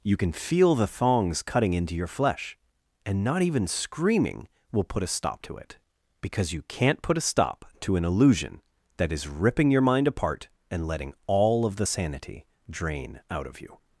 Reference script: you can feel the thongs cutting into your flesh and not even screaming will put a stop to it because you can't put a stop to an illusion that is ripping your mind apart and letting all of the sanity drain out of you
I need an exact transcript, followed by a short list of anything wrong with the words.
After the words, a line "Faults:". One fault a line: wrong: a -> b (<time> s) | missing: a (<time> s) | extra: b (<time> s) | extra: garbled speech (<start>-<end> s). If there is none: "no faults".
you can feel the thongs cutting into your flesh and not even screaming will put a stop to it because you can't put a stop to an illusion that is ripping your mind apart and letting all of the sanity drain out of you
Faults:
no faults